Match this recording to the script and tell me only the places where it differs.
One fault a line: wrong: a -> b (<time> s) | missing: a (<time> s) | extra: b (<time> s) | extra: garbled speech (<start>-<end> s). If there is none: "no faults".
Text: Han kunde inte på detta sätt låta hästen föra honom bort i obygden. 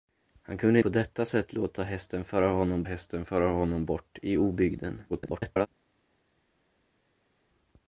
missing: inte (0.8 s)
extra: hästen föra honom (2.8 s)
extra: garbled speech (5.1-5.7 s)